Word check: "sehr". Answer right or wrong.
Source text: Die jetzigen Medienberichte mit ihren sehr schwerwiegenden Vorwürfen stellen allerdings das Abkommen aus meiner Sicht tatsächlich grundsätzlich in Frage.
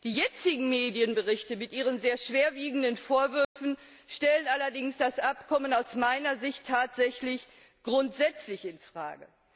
right